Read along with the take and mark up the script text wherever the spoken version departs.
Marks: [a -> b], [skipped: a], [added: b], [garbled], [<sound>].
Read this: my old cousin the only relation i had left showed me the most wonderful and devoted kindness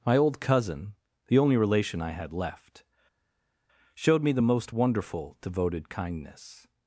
my old cousin the only relation i had left showed me the most wonderful [skipped: and] devoted kindness